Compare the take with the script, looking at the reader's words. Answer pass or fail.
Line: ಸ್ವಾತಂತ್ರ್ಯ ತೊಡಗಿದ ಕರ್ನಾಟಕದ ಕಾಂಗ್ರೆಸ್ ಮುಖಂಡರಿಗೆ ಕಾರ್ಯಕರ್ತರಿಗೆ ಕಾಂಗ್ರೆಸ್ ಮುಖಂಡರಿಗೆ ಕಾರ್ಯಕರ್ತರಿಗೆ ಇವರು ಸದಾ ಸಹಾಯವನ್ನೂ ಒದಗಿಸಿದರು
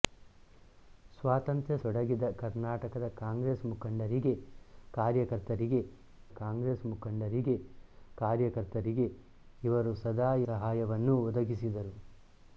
pass